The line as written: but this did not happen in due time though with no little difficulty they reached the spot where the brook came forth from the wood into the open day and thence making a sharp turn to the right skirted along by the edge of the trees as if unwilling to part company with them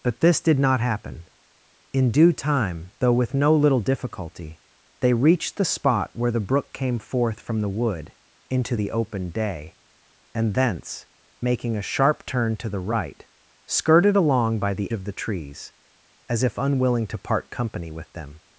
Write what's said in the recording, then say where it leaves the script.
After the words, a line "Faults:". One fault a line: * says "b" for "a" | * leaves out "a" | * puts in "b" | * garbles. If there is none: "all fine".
but this did not happen in due time though with no little difficulty they reached the spot where the brook came forth from the wood into the open day and thence making a sharp turn to the right skirted along by the of the trees as if unwilling to part company with them
Faults:
* leaves out "edge"